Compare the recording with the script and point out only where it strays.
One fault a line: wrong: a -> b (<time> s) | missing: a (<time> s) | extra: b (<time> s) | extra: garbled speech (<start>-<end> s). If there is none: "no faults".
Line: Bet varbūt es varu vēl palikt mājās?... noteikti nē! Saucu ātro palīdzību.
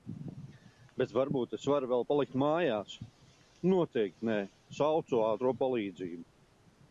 no faults